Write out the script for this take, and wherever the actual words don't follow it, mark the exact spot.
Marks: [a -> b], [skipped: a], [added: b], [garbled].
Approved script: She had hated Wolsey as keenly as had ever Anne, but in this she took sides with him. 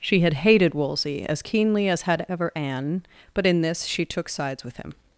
She had hated Wolsey as keenly as had ever Anne, but in this she took sides with him.